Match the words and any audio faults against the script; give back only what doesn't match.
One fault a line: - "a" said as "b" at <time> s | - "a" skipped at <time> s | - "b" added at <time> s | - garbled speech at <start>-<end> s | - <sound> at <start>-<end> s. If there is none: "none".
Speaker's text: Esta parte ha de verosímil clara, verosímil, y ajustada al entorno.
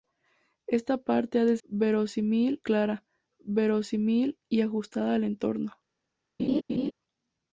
- laugh at 6.4-6.9 s